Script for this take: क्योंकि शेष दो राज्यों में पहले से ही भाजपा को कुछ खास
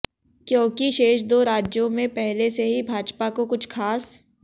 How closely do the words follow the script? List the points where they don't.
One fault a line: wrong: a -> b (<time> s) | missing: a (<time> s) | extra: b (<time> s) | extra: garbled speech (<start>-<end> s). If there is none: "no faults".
no faults